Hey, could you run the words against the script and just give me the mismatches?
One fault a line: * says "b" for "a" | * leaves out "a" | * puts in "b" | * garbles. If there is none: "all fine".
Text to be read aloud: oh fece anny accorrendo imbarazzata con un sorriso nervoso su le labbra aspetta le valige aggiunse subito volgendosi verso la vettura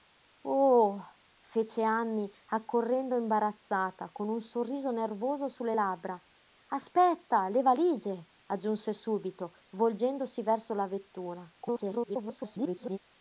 * garbles